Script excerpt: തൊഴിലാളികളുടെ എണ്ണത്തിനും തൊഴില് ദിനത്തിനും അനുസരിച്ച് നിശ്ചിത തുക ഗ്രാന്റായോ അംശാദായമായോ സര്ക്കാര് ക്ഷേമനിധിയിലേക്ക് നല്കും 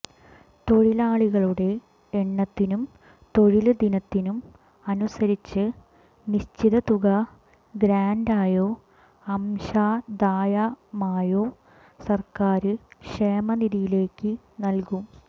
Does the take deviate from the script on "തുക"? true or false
false